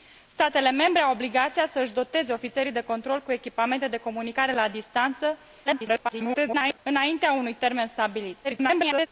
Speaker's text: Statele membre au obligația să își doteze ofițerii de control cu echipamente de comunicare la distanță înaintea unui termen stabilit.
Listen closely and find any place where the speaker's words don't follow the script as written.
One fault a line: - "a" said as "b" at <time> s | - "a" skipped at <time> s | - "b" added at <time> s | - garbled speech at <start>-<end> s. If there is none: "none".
- garbled speech at 5.7-6.8 s
- garbled speech at 8.4-9.1 s